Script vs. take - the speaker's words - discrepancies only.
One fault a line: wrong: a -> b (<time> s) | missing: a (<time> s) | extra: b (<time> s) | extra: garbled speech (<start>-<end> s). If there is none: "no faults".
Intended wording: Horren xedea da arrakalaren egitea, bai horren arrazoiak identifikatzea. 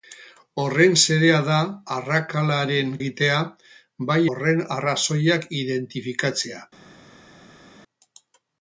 no faults